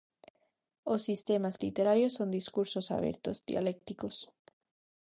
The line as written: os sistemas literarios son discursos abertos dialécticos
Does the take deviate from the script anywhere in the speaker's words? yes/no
no